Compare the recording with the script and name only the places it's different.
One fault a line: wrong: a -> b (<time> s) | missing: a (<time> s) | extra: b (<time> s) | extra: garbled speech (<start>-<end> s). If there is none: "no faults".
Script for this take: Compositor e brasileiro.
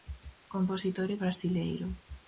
no faults